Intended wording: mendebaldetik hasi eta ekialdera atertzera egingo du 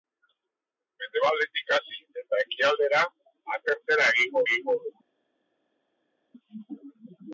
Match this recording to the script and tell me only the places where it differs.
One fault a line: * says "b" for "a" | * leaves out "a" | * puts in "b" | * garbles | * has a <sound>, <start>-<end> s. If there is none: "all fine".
* puts in "egingo"